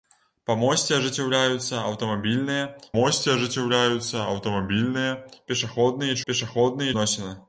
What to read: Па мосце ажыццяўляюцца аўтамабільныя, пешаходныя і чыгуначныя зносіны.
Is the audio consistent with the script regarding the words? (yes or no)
no